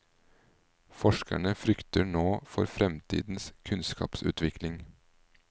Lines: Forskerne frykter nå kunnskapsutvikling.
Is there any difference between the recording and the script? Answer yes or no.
yes